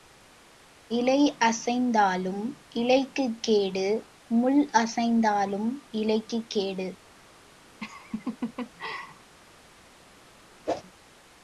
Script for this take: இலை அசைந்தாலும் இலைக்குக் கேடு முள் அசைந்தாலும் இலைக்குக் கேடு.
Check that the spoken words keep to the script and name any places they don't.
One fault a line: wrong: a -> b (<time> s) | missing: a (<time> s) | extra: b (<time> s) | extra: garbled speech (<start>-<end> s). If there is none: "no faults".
no faults